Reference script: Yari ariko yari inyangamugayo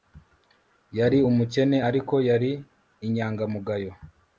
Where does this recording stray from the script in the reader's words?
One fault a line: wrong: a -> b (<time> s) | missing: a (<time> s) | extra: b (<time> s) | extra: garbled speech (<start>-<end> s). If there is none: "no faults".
extra: umukene (1.3 s)